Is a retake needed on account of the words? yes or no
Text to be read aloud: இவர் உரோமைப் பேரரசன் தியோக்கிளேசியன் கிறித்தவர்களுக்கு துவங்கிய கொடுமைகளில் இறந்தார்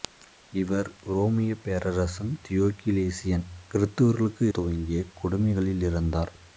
no